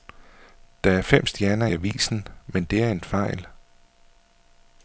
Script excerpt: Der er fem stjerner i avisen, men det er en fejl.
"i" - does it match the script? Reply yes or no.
no